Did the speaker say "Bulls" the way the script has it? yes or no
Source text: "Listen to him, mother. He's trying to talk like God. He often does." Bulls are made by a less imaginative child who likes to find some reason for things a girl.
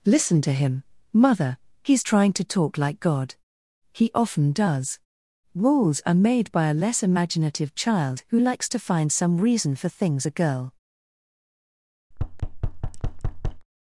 no